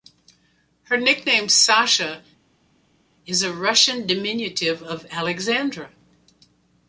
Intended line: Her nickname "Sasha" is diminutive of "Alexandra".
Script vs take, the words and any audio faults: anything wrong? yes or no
yes